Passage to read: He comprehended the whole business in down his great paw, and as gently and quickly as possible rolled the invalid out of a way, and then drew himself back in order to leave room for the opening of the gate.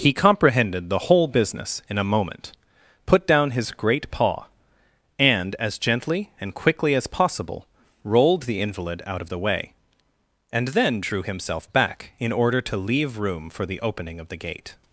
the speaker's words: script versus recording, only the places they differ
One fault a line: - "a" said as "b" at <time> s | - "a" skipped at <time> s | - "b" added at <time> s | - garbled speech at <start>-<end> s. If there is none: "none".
- "a moment put" added at 2.0 s
- "a" said as "the" at 9.3 s